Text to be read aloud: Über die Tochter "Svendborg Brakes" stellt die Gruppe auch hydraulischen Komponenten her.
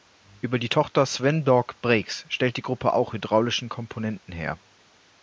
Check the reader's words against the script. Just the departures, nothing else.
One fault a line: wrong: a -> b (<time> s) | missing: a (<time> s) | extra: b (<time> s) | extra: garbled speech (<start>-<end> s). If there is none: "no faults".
no faults